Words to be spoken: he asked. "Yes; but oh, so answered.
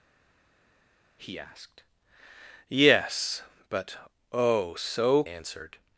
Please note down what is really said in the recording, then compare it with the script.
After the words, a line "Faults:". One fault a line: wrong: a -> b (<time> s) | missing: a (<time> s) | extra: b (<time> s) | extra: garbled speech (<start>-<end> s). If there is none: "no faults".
he asked. "Yes; but oh, so answered.
Faults:
no faults